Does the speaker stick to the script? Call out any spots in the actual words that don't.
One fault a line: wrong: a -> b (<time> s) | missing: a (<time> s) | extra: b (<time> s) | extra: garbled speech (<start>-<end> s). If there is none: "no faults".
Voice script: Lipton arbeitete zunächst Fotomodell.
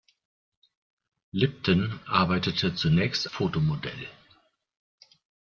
no faults